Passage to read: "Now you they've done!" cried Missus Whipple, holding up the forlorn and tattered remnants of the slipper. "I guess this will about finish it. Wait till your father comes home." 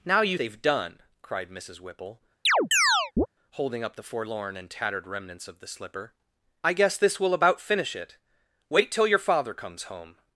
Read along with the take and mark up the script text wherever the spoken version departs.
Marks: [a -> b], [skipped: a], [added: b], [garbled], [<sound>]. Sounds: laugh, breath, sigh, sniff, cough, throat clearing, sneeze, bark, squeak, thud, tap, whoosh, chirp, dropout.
"Now you they've done!" cried Missus Whipple, [chirp] holding up the forlorn and tattered remnants of the slipper. "I guess this will about finish it. Wait till your father comes home."